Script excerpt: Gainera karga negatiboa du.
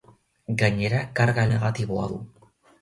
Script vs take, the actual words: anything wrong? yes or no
no